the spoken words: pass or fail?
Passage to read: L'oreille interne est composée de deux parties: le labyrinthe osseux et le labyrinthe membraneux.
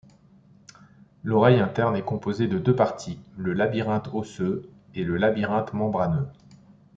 pass